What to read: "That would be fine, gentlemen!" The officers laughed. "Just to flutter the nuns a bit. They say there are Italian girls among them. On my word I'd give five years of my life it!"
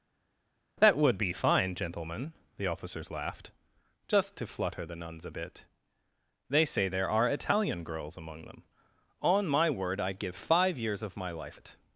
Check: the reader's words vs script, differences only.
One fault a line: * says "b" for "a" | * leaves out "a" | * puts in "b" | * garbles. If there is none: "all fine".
all fine